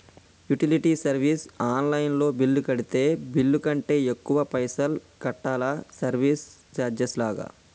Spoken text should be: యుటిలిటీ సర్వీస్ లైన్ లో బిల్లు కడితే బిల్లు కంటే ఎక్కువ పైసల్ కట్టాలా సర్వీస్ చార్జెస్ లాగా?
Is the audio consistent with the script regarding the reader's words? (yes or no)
no